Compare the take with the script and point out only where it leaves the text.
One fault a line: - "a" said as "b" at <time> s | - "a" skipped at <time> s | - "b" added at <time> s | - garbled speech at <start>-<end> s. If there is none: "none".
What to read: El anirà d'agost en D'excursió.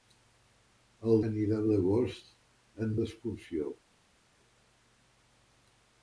none